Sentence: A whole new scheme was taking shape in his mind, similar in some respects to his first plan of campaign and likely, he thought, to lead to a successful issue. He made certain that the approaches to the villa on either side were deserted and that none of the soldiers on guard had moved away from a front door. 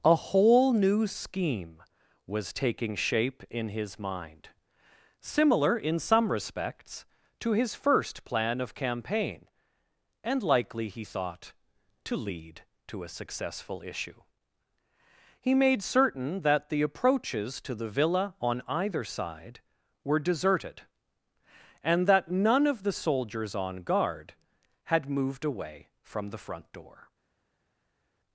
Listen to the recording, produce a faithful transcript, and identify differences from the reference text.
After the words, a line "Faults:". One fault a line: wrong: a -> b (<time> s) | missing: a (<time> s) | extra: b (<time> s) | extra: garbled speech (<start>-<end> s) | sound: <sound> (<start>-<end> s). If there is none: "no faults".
A whole new scheme was taking shape in his mind, similar in some respects to his first plan of campaign and likely, he thought, to lead to a successful issue. He made certain that the approaches to the villa on either side were deserted and that none of the soldiers on guard had moved away from the front door.
Faults:
wrong: a -> the (26.3 s)